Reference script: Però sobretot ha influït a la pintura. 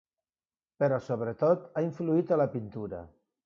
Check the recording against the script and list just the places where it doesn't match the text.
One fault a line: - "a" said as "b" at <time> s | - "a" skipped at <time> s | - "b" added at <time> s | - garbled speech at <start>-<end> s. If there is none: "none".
none